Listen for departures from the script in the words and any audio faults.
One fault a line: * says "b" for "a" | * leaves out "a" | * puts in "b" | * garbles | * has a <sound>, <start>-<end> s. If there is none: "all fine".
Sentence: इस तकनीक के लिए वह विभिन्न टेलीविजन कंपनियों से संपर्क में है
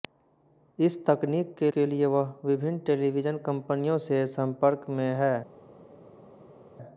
* puts in "के"